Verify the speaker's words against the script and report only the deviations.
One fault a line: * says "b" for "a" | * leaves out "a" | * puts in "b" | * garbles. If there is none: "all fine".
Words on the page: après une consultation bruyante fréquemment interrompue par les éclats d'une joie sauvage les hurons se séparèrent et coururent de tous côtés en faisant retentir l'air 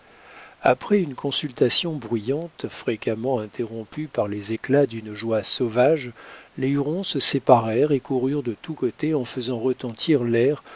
all fine